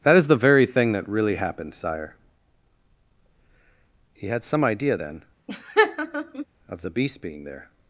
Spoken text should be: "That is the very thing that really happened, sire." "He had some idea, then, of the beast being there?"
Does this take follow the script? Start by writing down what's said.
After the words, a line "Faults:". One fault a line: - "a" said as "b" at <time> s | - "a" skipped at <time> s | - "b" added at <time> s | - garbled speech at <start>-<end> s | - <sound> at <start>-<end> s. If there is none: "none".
"That is the very thing that really happened, sire." "He had some idea, then, of the beast being there?"
Faults:
- laugh at 5.5-6.5 s